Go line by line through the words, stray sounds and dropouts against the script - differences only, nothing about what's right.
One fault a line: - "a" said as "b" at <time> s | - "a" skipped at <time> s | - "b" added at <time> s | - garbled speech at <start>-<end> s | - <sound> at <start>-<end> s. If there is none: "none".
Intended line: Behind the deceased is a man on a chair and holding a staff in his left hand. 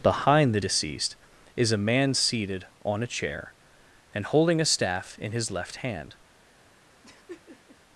- "seated" added at 2.1 s
- laugh at 7.0-7.8 s